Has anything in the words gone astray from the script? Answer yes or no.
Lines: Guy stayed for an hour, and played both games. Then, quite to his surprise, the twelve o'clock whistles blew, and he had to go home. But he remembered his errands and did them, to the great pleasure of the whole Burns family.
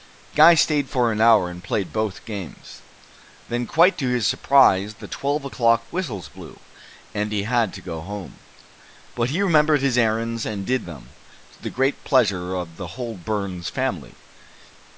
no